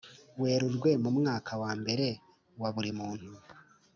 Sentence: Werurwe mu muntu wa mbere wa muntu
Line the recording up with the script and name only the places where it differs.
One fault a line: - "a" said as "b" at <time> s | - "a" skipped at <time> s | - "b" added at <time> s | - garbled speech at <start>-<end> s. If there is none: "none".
- "muntu" said as "mwaka" at 1.2 s
- "buri" added at 2.8 s